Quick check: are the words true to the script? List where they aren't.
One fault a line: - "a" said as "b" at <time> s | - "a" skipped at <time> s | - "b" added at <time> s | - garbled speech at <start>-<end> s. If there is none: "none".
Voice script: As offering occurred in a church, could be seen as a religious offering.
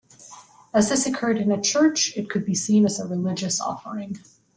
- "offering" said as "this" at 0.9 s
- "it" added at 2.2 s